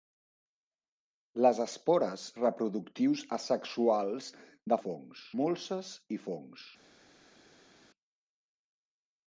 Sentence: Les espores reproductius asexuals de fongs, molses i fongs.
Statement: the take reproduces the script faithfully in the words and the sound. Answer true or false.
true